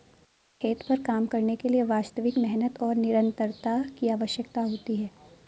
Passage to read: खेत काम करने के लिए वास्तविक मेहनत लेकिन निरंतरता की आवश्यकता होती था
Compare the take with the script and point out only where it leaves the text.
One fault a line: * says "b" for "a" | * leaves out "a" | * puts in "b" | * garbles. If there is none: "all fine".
* puts in "पर"
* says "और" for "लेकिन"
* says "है" for "था"